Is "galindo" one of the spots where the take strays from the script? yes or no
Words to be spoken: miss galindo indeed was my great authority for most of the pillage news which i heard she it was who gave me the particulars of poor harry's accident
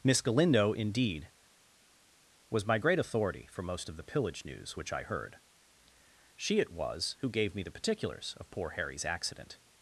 no